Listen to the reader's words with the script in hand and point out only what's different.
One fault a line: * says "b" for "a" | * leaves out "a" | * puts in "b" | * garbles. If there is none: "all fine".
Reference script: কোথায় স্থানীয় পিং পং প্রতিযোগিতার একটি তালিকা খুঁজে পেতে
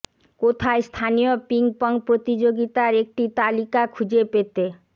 all fine